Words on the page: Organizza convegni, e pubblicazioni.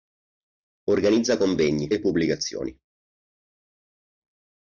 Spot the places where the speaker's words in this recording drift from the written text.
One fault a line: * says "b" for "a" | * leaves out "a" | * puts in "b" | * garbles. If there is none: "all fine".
all fine